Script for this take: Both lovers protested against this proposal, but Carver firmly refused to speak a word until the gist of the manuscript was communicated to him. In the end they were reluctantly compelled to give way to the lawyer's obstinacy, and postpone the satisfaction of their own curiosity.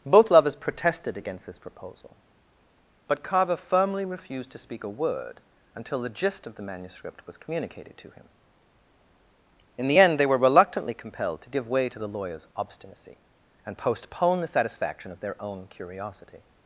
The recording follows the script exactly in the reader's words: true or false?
true